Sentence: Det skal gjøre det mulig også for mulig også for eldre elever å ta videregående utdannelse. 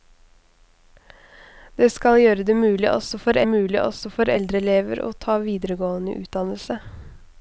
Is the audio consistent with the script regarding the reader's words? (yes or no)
yes